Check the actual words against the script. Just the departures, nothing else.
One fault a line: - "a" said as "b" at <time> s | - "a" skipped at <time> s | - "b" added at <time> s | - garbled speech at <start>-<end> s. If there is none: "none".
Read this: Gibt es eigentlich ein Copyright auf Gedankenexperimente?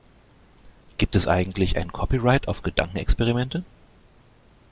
none